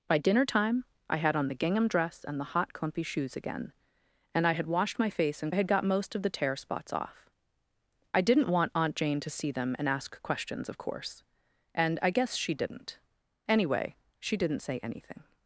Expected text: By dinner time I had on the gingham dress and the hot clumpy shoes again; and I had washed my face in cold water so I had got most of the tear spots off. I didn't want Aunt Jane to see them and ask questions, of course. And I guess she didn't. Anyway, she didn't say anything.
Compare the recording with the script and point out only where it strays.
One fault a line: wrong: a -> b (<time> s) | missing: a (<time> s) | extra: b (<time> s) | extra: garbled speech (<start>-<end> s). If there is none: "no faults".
missing: cold water so (5.5 s)